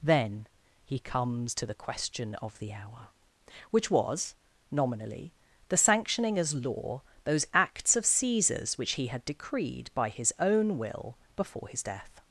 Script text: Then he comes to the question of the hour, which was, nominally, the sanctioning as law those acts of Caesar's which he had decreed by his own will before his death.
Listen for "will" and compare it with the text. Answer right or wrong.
right